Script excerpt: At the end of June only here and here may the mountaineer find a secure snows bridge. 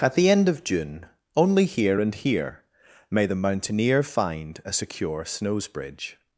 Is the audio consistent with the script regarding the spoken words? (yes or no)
yes